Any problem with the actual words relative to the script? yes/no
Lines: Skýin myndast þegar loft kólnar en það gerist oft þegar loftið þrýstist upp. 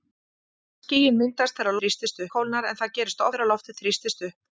yes